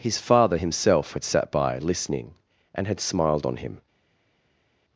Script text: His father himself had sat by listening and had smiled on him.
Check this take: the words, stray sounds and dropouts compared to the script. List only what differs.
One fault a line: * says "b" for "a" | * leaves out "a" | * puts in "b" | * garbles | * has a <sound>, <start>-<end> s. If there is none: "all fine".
all fine